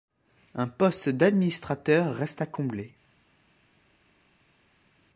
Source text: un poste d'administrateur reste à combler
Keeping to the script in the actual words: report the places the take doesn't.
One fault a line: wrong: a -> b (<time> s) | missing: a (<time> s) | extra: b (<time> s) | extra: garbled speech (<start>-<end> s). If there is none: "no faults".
no faults